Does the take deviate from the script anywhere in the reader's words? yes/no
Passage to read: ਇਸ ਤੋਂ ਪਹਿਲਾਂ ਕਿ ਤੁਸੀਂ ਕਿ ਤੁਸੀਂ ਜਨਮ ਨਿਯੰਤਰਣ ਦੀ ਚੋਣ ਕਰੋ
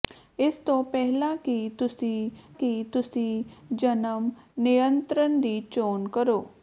no